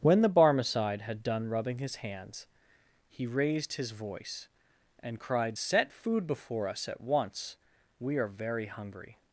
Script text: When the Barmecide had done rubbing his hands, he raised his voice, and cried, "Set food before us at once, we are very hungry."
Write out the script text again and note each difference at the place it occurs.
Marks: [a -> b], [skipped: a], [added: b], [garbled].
When the Barmecide had done rubbing his hands, he raised his voice, and cried, "Set food before us at once, we are very hungry."